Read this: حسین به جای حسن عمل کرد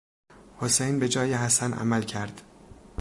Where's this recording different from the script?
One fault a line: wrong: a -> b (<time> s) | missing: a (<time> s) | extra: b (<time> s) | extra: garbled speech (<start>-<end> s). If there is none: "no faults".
no faults